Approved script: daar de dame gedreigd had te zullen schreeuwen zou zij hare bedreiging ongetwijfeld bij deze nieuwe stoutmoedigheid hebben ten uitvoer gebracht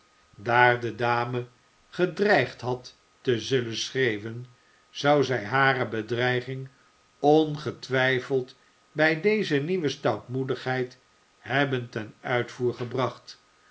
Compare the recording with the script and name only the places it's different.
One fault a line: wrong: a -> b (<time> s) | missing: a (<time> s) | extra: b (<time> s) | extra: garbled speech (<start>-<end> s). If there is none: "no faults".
no faults